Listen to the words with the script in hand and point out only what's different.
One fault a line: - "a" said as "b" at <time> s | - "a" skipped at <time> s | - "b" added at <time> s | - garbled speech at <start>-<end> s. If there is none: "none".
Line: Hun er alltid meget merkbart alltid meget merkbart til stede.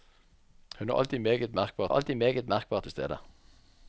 none